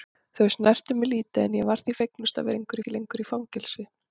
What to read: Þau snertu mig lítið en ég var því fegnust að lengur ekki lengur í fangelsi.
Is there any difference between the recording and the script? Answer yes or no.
no